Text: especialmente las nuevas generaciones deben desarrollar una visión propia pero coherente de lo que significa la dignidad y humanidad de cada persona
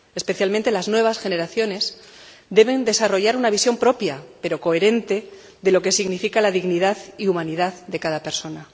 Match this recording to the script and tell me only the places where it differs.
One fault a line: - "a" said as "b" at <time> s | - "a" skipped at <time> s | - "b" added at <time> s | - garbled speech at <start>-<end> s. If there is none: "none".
none